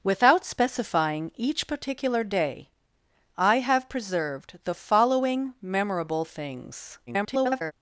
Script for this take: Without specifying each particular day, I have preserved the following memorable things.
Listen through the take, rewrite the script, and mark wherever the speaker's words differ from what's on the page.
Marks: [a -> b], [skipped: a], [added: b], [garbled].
Without specifying each particular day, I have preserved the following memorable things. [garbled]